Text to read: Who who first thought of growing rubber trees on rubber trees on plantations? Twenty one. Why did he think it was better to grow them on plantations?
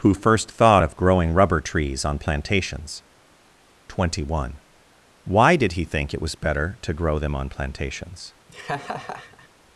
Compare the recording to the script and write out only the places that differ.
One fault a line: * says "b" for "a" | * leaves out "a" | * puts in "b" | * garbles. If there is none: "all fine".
* leaves out "who"
* leaves out "rubber trees on"